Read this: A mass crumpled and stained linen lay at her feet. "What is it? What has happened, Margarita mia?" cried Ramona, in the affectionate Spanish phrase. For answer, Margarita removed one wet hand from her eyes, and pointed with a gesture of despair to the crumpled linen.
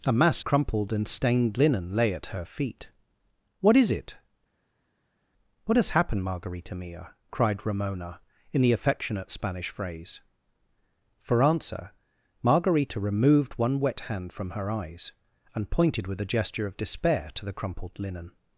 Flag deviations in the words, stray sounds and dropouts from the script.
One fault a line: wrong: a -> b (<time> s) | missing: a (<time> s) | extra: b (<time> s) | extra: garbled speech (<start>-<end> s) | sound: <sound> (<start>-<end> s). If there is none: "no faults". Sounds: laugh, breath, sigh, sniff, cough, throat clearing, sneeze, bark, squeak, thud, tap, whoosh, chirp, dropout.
no faults